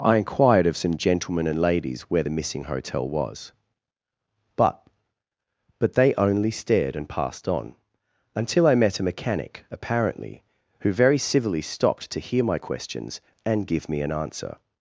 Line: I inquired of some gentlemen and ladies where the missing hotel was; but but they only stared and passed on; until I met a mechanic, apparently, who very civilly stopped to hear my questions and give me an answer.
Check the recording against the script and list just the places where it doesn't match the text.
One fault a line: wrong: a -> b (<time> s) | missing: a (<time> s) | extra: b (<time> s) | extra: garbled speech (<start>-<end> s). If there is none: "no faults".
no faults